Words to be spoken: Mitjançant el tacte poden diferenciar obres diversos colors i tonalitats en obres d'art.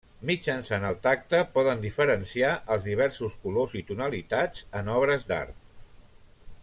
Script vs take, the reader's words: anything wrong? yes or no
yes